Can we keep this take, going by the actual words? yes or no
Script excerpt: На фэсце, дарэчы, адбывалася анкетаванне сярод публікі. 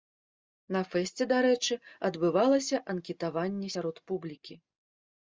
yes